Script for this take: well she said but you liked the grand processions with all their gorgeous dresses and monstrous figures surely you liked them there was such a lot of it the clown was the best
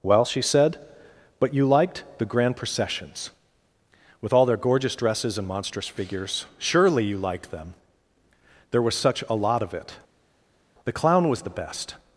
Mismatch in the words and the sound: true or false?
false